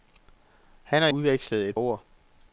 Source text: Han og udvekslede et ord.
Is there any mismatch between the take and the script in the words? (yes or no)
no